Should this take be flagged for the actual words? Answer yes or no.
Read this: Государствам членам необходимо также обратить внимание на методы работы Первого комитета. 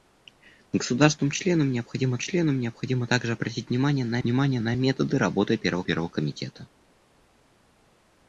yes